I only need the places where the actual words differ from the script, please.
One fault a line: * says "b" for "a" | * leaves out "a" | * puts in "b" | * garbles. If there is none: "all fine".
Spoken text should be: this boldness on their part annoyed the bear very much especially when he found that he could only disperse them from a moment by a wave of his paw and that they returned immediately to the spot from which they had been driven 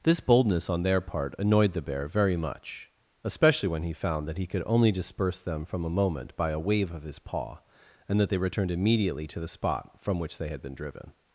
all fine